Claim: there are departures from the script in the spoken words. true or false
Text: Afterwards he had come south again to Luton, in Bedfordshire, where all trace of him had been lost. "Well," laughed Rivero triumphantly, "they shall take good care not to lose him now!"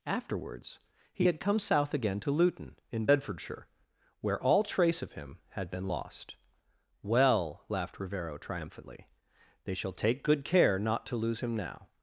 false